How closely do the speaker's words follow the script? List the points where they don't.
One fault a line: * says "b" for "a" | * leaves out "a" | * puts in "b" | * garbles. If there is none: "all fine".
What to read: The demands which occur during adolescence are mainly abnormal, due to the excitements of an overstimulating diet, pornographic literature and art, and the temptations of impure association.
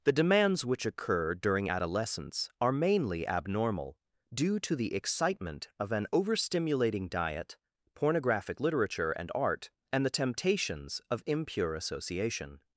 * says "excitement" for "excitements"